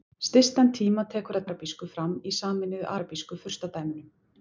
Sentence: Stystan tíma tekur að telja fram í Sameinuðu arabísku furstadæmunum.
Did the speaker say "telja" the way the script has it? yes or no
no